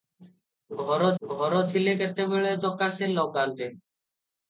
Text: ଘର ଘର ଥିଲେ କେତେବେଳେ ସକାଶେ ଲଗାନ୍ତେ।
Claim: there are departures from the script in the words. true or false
false